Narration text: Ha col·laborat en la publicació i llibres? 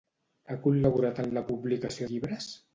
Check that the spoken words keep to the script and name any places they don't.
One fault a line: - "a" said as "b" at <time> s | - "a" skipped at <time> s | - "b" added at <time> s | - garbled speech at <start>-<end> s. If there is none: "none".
none